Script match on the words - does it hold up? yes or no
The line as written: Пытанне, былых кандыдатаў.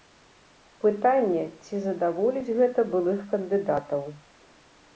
no